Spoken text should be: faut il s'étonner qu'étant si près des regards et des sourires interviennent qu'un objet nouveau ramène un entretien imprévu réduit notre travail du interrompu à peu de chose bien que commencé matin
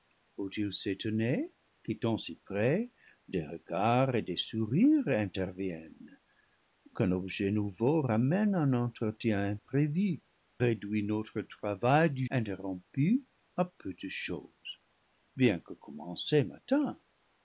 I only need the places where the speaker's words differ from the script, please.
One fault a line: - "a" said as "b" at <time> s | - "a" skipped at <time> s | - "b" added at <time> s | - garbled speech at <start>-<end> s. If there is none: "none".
none